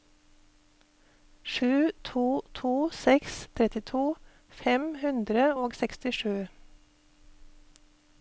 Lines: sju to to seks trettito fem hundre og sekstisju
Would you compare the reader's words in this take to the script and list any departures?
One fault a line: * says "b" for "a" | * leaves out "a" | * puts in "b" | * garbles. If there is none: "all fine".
all fine